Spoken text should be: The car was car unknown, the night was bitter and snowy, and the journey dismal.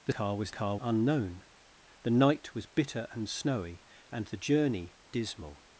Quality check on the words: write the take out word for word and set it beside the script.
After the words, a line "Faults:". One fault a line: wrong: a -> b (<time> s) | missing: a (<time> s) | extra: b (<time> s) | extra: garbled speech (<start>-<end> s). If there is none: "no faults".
The car was car unknown, the night was bitter and snowy, and the journey dismal.
Faults:
no faults